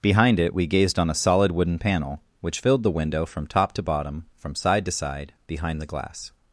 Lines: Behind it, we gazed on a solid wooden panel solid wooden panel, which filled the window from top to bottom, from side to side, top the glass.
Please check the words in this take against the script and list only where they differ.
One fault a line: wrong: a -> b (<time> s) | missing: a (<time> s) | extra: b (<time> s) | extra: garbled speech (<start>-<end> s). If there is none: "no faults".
missing: solid wooden panel (2.2 s)
wrong: top -> behind (5.5 s)